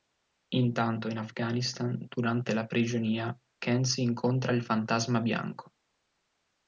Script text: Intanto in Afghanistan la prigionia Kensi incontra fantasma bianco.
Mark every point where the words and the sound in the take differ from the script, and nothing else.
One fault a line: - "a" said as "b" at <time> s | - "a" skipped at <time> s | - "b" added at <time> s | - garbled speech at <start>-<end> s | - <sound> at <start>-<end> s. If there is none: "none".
- "durante" added at 2.1 s
- "il" added at 4.5 s